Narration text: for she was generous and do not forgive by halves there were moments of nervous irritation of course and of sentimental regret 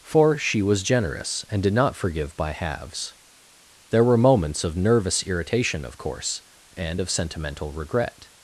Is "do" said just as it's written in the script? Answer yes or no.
no